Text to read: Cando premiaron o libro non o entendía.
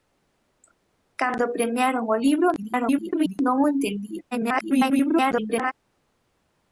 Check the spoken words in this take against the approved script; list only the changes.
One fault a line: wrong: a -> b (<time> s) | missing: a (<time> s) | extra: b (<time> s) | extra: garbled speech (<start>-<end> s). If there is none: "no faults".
extra: garbled speech (2.6-3.4 s)
extra: garbled speech (4.3-5.7 s)